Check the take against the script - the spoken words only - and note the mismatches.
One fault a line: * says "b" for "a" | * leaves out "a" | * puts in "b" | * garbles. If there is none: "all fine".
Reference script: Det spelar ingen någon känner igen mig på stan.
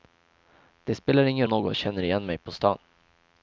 all fine